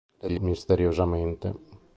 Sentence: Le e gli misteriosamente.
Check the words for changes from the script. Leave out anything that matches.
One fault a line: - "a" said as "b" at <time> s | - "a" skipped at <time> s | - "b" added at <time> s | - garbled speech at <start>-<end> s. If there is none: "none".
none